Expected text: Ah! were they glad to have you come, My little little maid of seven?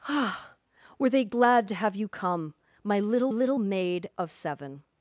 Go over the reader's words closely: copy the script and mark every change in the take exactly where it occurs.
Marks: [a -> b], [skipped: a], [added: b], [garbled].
Ah! were they glad to have you come, My little little maid of seven?